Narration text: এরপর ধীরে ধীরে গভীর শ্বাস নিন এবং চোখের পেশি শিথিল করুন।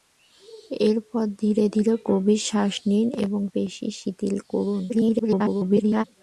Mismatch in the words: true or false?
true